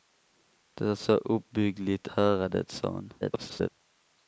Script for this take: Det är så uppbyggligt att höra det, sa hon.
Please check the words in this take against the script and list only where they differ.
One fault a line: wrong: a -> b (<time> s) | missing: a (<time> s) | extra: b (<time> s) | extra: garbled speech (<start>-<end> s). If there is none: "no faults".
missing: att (2.1 s)
extra: garbled speech (3.2-3.7 s)